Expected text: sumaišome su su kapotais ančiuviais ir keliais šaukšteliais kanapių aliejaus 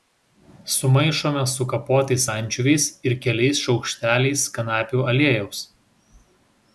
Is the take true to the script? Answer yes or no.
no